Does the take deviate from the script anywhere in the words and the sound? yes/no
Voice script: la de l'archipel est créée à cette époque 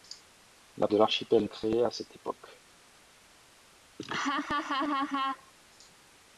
yes